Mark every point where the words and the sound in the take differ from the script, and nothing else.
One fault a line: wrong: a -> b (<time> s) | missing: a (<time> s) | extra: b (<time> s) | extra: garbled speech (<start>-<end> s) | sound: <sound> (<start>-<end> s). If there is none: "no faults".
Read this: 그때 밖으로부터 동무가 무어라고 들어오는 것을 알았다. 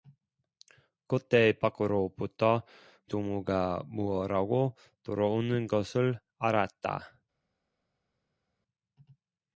no faults